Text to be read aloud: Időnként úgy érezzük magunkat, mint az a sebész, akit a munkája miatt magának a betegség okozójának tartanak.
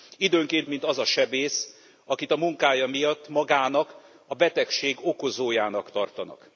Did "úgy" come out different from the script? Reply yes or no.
yes